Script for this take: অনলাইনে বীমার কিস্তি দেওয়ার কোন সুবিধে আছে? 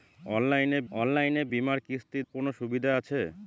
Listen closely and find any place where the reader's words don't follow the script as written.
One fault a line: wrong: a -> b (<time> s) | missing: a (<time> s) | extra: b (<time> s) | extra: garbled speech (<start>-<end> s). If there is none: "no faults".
extra: অনলাইনে (0.9 s)
missing: দেওয়ার (2.2 s)